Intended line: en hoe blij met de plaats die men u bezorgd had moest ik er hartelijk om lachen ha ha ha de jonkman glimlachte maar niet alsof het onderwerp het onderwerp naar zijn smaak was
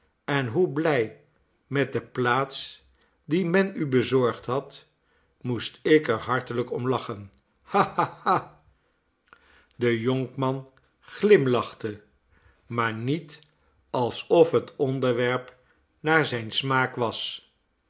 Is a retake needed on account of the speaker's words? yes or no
yes